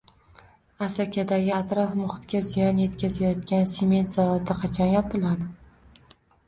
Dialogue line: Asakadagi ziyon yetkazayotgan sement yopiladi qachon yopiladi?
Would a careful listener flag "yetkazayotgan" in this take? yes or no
no